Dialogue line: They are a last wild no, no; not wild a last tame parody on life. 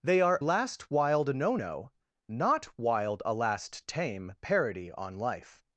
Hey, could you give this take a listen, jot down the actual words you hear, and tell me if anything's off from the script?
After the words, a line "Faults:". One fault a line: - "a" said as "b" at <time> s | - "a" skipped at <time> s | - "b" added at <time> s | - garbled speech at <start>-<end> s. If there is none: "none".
They are last wild no, no; not wild a last tame parody on life.
Faults:
- "a" skipped at 0.4 s